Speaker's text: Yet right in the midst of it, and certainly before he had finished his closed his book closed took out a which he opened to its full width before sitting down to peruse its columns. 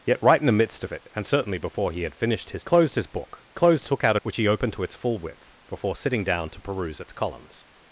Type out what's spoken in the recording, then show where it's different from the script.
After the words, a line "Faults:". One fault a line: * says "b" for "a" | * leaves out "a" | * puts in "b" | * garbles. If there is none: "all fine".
Yet right in the midst of it, and certainly before he had finished his closed his book closed took out a which he opened to its full width before sitting down to peruse its columns.
Faults:
all fine